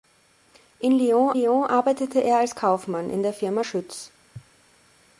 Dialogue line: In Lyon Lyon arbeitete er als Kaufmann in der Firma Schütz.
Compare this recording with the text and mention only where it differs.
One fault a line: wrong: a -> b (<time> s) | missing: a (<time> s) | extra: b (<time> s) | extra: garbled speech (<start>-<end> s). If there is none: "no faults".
no faults